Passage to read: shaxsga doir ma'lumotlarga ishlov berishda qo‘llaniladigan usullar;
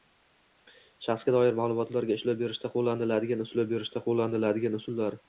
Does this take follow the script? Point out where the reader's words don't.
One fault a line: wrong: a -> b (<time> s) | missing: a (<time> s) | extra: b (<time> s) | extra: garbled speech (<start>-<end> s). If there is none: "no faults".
extra: ishlov berishda qo‘llaniladigan (3.5 s)